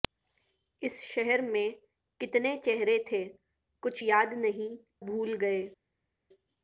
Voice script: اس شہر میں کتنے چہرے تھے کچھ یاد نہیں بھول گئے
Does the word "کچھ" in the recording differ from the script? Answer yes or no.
no